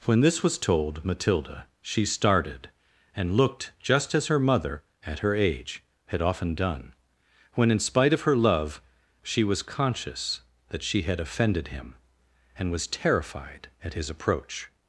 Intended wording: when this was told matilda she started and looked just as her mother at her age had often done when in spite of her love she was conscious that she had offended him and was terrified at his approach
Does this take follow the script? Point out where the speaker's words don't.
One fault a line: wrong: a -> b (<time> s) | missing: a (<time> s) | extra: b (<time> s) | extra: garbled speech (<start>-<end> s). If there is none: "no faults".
no faults